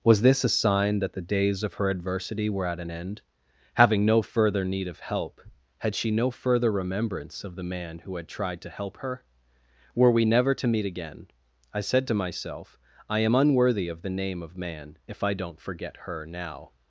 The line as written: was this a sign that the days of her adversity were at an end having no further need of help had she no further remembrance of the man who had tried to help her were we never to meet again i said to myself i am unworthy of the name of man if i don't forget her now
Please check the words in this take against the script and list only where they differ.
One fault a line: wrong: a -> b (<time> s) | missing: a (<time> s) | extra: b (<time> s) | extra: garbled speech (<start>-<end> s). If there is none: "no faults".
no faults